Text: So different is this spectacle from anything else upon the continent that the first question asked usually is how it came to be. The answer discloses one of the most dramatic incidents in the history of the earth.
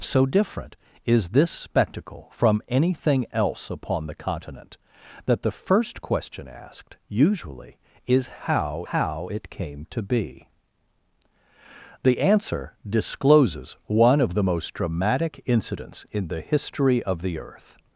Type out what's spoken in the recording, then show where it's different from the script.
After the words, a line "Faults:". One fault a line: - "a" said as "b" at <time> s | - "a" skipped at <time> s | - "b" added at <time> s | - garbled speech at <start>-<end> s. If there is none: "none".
So different is this spectacle from anything else upon the continent that the first question asked usually is how how it came to be. The answer discloses one of the most dramatic incidents in the history of the earth.
Faults:
- "how" added at 8.9 s